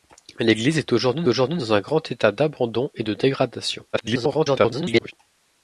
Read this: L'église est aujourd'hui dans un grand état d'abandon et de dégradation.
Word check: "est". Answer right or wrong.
right